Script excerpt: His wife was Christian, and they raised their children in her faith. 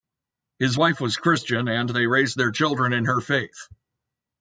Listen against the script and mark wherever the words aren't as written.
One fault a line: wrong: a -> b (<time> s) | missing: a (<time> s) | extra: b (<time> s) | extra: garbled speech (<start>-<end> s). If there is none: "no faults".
no faults